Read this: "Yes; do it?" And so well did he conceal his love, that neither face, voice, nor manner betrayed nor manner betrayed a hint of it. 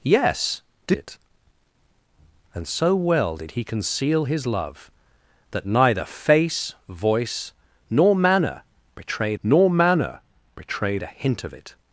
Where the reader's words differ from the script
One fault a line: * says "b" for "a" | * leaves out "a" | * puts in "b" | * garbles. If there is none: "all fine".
all fine